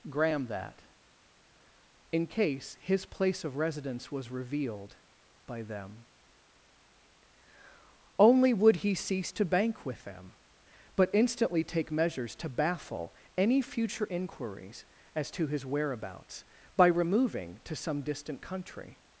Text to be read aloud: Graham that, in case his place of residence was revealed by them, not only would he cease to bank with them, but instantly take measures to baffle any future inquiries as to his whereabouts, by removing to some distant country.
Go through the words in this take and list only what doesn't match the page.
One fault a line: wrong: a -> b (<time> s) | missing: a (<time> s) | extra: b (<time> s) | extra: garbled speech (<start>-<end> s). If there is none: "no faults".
missing: not (6.0 s)